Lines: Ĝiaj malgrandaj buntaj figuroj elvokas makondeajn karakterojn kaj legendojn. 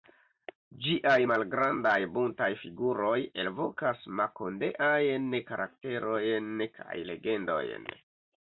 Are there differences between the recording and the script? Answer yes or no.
no